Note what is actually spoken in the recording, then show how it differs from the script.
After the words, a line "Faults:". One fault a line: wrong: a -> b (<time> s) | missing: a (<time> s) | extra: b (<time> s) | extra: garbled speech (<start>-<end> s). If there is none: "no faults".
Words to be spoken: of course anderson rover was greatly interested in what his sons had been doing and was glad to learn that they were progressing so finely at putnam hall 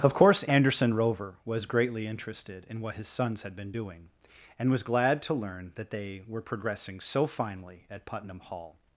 of course anderson rover was greatly interested in what his sons had been doing and was glad to learn that they were progressing so finely at putnam hall
Faults:
no faults